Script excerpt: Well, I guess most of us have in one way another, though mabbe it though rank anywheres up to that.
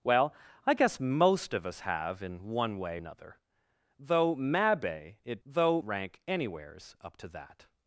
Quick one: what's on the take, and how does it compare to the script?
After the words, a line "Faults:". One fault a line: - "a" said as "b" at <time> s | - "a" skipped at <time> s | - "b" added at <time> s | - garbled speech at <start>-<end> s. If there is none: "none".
Well, I guess most of us have in one way another, though mabbe it though rank anywheres up to that.
Faults:
none